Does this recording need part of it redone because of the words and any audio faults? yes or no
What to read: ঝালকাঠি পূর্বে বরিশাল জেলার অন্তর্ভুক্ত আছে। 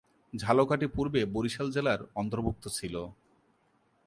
yes